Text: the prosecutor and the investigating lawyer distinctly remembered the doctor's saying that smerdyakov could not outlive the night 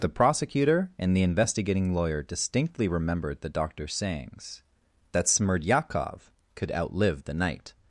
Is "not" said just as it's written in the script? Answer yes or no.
no